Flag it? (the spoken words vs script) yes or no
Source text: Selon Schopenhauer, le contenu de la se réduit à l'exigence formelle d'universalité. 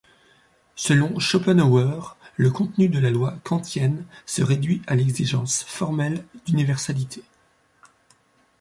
yes